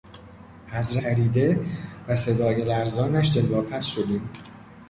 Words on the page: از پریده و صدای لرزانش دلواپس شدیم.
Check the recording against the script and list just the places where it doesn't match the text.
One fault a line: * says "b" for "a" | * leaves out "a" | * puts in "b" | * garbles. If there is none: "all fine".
all fine